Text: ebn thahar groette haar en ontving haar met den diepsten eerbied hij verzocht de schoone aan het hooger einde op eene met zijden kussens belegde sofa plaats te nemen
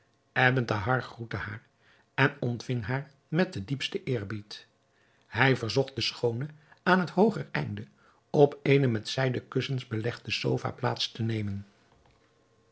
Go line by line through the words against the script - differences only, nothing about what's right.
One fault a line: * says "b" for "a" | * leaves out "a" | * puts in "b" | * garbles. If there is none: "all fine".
all fine